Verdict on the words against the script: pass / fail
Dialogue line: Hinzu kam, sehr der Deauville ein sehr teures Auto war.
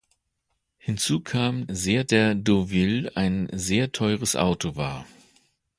pass